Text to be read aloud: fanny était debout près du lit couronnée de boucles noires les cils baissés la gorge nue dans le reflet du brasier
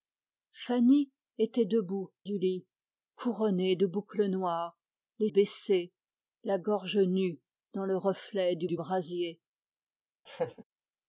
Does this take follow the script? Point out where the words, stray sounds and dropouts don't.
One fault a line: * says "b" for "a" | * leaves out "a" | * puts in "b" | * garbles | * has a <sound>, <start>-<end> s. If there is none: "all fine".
* leaves out "près"
* leaves out "cils"
* puts in "du"
* has a laugh, 10.3-10.6 s